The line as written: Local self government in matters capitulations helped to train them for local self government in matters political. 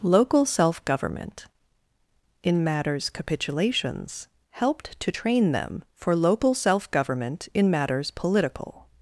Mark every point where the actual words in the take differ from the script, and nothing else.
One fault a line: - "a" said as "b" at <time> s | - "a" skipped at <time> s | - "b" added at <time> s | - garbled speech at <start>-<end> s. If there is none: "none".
none